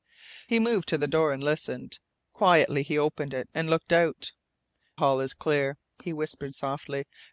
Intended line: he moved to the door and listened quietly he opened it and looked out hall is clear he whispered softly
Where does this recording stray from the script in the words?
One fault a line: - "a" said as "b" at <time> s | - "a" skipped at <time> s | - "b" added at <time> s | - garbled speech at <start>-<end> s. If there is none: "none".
none